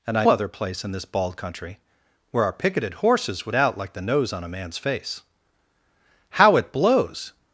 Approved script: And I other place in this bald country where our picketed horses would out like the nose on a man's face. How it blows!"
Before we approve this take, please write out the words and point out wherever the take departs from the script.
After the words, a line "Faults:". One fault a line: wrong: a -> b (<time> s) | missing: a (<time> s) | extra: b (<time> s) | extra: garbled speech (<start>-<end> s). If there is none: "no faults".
And I other place in this bald country where our picketed horses would out like the nose on a man's face. How it blows!"
Faults:
no faults